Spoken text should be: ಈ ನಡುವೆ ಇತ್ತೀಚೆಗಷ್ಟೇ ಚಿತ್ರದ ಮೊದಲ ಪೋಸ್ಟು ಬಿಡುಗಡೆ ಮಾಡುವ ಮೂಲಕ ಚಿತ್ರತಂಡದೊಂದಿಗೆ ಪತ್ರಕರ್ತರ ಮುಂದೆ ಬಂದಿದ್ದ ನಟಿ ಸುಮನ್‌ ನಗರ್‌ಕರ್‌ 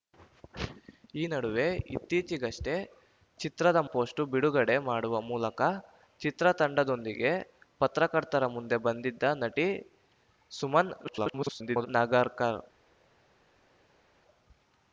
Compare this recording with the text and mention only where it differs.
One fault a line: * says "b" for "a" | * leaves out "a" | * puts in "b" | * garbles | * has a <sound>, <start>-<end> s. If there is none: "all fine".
* leaves out "ಮೊದಲ"
* garbles